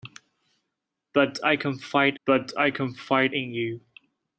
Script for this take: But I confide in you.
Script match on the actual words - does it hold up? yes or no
no